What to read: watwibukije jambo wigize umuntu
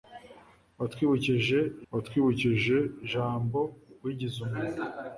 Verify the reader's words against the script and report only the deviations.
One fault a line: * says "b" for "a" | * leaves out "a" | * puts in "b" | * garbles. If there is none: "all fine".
* puts in "watwibukije"